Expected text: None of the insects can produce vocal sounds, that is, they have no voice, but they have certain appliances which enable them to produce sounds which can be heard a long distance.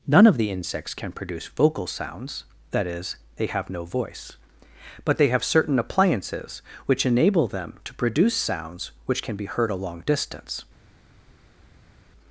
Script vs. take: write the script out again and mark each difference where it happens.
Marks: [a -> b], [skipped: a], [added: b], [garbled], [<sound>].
None of the insects can produce vocal sounds, that is, they have no voice, but they have certain appliances which enable them to produce sounds which can be heard a long distance.